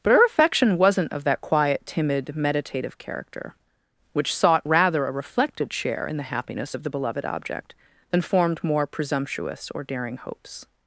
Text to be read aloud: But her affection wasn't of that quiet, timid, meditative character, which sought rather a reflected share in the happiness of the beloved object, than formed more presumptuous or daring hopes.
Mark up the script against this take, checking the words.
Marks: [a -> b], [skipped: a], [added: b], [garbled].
But her affection wasn't of that quiet, timid, meditative character, which sought rather a reflected share in the happiness of the beloved object, than formed more presumptuous or daring hopes.